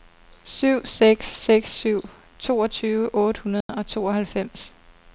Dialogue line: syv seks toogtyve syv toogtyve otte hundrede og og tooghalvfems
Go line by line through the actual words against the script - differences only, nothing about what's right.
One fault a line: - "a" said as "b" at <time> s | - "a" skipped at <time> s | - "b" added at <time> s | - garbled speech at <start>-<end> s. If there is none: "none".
- "toogtyve" said as "seks" at 1.4 s
- "og" skipped at 3.9 s